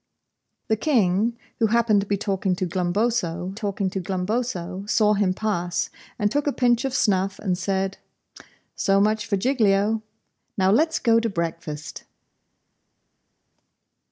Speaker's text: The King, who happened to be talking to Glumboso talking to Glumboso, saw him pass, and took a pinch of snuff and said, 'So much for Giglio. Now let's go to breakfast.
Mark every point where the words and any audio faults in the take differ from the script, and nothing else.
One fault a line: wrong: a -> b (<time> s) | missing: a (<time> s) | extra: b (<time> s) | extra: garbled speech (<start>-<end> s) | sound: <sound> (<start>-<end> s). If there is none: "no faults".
no faults